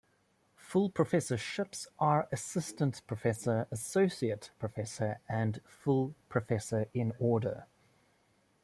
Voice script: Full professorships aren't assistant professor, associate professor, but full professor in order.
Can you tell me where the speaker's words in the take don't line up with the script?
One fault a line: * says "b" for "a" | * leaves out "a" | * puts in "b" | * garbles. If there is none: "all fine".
* says "are" for "aren't"
* says "and" for "but"